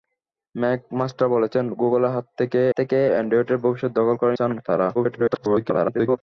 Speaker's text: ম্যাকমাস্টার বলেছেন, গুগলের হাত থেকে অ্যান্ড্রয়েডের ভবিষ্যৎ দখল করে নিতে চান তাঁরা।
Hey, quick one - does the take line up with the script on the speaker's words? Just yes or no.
no